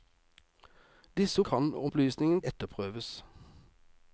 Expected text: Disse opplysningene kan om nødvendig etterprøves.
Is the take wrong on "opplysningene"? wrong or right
wrong